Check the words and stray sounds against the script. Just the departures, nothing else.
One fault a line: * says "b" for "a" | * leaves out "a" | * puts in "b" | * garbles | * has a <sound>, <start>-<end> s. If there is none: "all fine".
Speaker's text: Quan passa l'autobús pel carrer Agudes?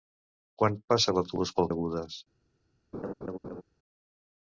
* leaves out "carrer"
* has a laugh, 2.9-3.6 s